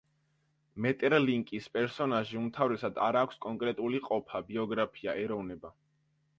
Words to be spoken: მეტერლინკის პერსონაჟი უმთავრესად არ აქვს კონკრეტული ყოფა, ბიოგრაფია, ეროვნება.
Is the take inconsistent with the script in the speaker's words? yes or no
no